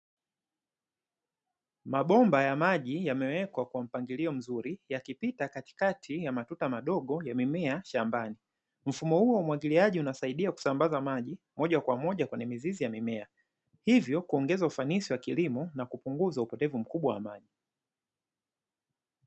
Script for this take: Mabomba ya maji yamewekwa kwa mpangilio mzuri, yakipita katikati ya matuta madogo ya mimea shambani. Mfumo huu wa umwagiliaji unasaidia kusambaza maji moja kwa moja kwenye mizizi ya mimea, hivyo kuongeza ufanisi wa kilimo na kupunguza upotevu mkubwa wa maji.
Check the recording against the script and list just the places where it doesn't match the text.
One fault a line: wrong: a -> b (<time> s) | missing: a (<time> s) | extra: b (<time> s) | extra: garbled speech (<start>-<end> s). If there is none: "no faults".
no faults